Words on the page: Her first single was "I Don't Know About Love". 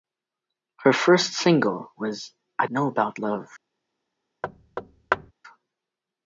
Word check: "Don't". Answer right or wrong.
wrong